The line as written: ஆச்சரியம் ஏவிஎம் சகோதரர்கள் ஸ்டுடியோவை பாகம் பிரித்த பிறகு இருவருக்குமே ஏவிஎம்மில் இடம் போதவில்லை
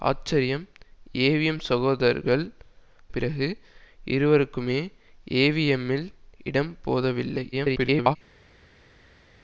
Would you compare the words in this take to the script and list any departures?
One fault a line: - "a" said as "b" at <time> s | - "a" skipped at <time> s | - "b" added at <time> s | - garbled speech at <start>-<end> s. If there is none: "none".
- "ஸ்டுடியோவை பாகம் பிரித்த" skipped at 2.5 s
- garbled speech at 7.5-8.2 s